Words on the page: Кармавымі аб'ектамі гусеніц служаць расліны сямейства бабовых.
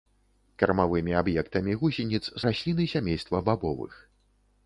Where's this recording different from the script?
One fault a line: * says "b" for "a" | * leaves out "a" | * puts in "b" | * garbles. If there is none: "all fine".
* leaves out "служаць"